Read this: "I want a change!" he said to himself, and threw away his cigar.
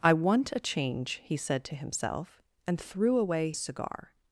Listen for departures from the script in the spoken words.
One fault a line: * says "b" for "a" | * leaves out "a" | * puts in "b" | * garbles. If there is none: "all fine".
* leaves out "his"